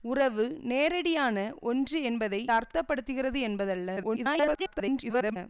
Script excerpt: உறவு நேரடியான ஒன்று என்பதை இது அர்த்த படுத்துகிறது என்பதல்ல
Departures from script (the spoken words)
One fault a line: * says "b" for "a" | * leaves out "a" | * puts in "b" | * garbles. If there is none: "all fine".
* leaves out "இது"
* garbles